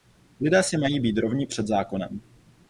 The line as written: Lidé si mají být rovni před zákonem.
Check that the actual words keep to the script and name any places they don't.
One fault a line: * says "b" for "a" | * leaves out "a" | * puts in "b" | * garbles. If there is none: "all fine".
all fine